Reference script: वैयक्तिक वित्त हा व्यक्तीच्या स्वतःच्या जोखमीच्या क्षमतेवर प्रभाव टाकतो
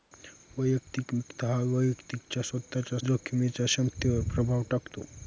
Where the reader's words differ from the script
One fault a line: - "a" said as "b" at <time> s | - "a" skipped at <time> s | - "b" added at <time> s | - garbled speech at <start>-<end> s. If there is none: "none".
none